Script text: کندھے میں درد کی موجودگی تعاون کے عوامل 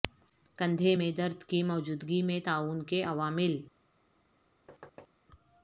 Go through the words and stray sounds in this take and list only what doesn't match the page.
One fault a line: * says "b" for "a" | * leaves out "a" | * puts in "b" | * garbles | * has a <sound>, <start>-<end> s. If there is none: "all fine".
* puts in "میں"
* has a thud, 4.7-5.1 s